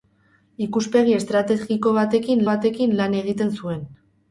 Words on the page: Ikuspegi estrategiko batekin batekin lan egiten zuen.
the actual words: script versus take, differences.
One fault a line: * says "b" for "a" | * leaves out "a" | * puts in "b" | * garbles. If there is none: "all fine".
all fine